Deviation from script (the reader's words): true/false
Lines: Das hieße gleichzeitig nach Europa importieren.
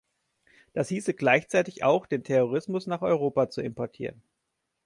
true